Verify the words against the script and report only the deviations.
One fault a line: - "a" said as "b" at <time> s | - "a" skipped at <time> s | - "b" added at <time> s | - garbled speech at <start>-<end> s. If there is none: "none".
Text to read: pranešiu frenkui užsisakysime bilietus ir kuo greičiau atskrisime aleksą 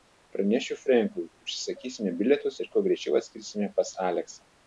- "pas" added at 3.8 s